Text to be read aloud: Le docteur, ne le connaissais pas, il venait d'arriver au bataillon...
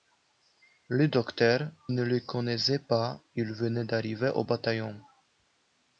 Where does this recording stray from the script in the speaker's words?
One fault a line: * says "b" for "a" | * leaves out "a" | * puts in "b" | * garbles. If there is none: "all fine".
all fine